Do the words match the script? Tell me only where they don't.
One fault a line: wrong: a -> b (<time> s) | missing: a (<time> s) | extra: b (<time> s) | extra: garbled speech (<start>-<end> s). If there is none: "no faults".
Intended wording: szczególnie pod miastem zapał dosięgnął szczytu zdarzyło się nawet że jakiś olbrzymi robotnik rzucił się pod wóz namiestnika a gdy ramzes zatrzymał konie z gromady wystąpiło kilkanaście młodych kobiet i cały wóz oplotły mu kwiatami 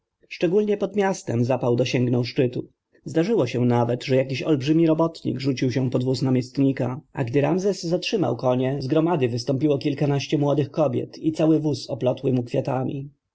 no faults